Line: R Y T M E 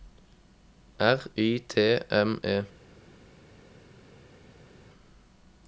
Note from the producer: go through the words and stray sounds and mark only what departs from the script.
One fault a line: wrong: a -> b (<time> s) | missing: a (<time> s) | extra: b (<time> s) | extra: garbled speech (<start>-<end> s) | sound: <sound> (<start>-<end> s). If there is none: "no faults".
no faults